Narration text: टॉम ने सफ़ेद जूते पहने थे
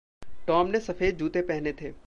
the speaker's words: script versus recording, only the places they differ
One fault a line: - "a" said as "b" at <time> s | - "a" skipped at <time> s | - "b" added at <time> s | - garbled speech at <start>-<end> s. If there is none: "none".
none